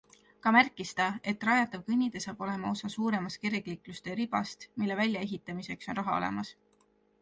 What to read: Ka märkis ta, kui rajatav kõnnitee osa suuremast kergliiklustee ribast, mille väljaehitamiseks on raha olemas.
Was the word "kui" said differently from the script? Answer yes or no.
yes